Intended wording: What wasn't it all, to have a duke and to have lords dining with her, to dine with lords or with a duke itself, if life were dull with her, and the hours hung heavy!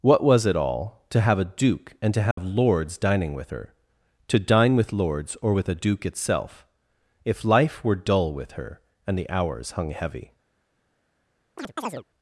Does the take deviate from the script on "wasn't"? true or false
true